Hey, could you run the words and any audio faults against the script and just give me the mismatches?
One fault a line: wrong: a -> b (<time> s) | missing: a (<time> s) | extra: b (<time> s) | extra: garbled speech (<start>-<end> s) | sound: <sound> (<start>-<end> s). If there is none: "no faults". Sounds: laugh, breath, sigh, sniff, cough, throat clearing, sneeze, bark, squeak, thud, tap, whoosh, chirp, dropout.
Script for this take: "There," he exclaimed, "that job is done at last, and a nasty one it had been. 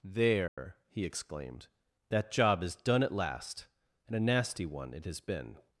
sound: dropout (0.5-0.6 s)
wrong: had -> has (5.0 s)